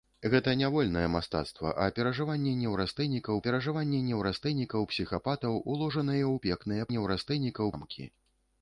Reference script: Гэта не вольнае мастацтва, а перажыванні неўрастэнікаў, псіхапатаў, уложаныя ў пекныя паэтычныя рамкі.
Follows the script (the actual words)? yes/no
no